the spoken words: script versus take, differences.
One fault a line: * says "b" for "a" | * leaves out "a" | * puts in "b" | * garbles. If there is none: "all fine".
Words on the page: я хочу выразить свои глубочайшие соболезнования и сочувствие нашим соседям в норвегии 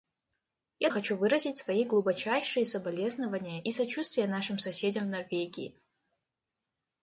all fine